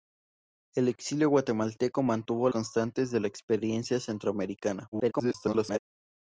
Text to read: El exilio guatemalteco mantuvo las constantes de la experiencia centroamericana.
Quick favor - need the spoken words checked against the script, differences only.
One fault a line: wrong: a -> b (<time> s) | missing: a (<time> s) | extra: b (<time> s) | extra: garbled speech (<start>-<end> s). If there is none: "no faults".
missing: las (2.5 s)
extra: garbled speech (4.9-5.8 s)